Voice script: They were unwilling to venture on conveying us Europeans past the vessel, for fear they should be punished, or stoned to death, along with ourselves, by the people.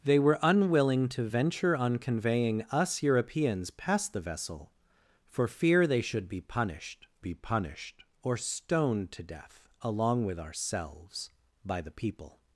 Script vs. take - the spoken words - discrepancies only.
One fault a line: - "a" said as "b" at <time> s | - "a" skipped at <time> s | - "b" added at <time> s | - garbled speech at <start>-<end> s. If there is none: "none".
- "be punished" added at 7.2 s